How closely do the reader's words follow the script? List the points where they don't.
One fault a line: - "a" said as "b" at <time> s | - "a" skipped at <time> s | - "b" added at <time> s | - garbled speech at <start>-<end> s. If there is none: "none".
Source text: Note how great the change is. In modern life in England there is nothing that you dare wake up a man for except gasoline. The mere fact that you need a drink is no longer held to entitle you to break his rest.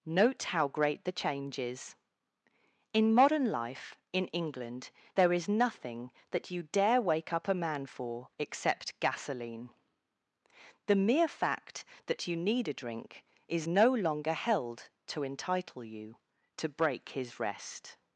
none